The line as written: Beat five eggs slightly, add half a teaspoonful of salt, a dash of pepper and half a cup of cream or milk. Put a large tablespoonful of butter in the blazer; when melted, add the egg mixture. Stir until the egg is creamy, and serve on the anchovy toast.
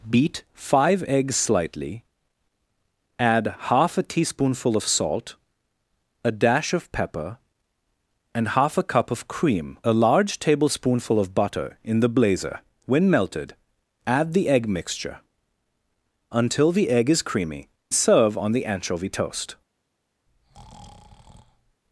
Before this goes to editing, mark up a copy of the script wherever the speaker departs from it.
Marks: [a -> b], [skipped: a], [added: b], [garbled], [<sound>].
Beat five eggs slightly, add half a teaspoonful of salt, a dash of pepper and half a cup of cream [skipped: or milk. Put] a large tablespoonful of butter in the blazer; when melted, add the egg mixture. [skipped: Stir] until the egg is creamy, [skipped: and] serve on the anchovy toast. [breath]